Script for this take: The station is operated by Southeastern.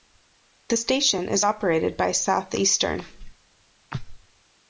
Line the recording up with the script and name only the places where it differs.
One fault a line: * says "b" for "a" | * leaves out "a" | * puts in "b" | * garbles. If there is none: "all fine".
all fine